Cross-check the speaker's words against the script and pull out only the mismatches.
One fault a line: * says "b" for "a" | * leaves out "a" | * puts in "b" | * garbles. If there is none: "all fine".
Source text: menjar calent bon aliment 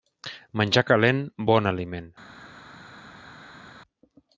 all fine